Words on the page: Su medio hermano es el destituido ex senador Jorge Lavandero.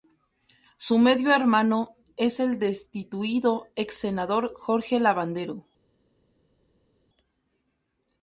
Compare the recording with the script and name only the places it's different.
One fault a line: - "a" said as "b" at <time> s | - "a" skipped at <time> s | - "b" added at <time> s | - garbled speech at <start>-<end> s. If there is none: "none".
none